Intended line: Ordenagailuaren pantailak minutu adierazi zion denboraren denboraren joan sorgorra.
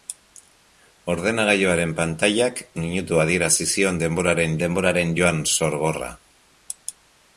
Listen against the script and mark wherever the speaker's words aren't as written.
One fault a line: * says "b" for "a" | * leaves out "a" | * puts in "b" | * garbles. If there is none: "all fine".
all fine